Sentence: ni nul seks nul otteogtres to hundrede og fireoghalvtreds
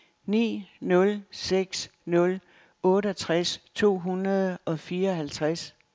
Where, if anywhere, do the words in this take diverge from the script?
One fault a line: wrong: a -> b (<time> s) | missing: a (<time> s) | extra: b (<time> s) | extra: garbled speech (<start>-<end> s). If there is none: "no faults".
no faults